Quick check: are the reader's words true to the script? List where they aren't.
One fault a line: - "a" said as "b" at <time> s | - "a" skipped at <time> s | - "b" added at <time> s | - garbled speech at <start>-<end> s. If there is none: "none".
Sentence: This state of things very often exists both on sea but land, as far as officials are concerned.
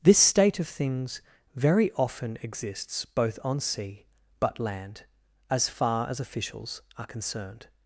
none